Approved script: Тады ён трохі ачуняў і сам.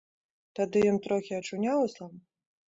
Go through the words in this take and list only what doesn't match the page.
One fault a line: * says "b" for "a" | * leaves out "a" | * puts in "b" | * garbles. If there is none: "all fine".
all fine